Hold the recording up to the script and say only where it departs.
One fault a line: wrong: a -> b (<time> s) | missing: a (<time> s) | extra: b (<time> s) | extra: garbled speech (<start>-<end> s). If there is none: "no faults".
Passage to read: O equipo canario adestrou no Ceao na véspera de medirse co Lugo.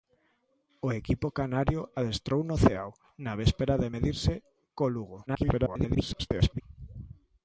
extra: garbled speech (5.3-6.6 s)